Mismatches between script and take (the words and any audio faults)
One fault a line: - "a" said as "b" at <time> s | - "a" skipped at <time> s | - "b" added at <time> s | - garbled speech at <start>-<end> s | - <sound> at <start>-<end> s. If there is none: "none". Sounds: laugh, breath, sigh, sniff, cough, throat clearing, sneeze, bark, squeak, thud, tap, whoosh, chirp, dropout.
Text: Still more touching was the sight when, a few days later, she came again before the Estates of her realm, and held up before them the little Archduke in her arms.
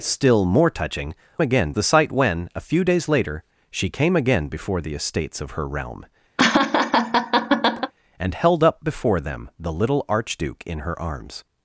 - "was" said as "again" at 1.4 s
- laugh at 6.4-7.9 s